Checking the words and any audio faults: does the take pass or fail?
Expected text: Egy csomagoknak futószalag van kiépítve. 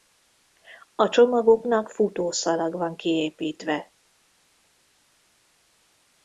fail